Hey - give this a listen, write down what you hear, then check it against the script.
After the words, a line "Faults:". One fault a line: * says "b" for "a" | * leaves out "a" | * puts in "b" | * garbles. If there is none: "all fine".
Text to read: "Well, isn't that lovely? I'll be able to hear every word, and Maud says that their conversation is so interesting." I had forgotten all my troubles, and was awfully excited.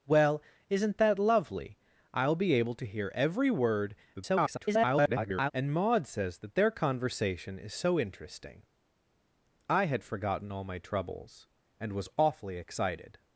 "Well, isn't that lovely? I'll be able to hear every word, [garbled] and Maud says that their conversation is so interesting." I had forgotten all my troubles, and was awfully excited.
Faults:
* garbles